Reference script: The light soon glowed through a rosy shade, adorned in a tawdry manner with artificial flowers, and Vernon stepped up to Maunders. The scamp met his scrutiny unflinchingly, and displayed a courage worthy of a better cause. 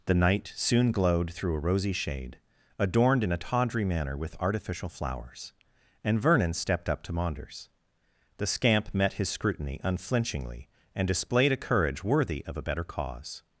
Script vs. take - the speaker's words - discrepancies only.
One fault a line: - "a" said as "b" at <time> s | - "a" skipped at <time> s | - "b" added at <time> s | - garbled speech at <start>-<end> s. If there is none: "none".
- "light" said as "night" at 0.1 s